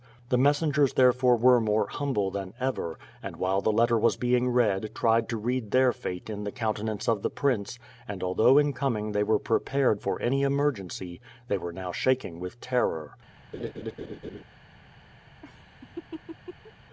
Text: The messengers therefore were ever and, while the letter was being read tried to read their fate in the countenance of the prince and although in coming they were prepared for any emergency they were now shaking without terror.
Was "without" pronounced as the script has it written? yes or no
no